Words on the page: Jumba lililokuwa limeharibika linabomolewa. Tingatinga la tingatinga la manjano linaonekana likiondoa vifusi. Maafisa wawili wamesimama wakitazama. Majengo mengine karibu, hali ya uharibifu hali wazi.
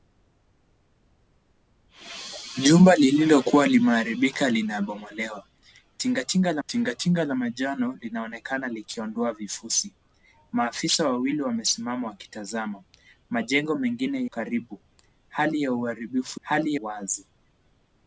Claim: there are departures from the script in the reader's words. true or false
false